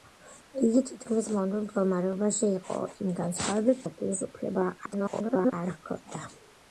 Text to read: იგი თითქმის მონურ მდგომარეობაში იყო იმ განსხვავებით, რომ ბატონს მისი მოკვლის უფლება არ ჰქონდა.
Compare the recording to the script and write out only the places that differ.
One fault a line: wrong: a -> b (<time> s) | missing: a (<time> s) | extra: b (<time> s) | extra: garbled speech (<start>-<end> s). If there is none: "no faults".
missing: რომ ბატონს მისი (3.8 s)
extra: garbled speech (4.9-5.5 s)